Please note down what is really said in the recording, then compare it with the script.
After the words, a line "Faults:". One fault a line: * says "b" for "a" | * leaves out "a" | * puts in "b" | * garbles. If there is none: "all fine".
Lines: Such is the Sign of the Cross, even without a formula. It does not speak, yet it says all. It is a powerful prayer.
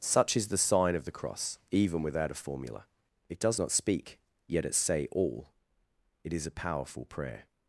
Such is the Sign of the Cross, even without a formula. It does not speak, yet it say all. It is a powerful prayer.
Faults:
* says "say" for "says"